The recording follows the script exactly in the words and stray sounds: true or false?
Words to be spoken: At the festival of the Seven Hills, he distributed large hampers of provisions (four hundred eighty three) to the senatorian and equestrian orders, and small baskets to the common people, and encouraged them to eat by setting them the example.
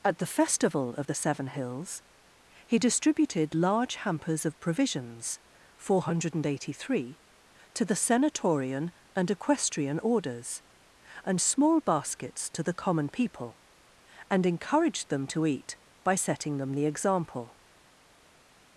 true